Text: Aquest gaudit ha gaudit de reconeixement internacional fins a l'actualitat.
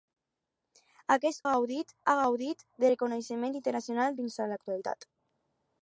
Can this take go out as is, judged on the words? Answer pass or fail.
pass